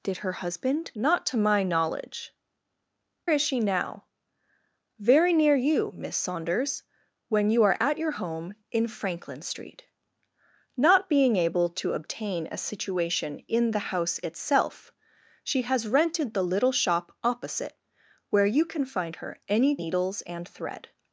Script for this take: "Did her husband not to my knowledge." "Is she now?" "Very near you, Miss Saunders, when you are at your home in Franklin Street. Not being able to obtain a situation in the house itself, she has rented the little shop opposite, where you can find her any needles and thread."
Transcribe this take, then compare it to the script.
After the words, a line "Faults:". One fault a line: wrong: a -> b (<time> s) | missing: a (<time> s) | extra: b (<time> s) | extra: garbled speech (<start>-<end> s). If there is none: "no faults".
"Did her husband not to my knowledge." "Is she now?" "Very near you, Miss Saunders, when you are at your home in Franklin Street. Not being able to obtain a situation in the house itself, she has rented the little shop opposite, where you can find her any needles and thread."
Faults:
no faults